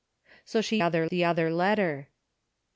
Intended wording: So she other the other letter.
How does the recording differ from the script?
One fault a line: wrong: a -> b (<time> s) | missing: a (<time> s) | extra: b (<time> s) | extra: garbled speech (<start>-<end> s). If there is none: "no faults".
no faults